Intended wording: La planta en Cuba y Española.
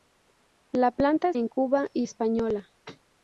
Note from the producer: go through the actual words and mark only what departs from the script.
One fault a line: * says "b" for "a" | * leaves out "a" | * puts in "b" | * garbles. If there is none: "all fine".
all fine